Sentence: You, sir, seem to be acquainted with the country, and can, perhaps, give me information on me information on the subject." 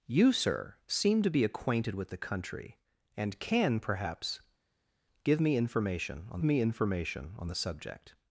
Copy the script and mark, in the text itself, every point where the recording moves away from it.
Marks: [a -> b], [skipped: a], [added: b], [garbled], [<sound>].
You, sir, seem to be acquainted with the country, and can, perhaps, give me information on me information on the subject."